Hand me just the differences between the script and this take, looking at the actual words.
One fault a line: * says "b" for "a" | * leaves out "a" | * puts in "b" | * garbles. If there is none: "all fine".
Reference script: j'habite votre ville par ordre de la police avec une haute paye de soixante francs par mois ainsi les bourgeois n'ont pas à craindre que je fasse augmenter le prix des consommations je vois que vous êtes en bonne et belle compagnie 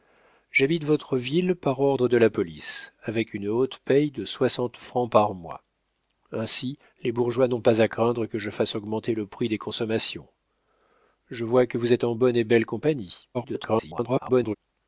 * garbles